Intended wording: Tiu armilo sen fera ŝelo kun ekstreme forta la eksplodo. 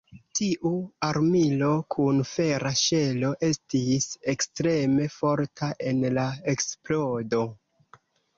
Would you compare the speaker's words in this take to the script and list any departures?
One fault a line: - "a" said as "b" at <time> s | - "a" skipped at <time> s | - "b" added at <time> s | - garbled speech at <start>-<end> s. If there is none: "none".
- "sen" said as "kun" at 1.9 s
- "kun" said as "estis" at 3.5 s
- "en" added at 5.9 s